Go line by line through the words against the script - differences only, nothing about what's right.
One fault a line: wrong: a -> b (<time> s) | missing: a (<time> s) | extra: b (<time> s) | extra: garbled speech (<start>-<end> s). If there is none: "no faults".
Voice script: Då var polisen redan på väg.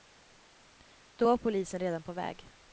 no faults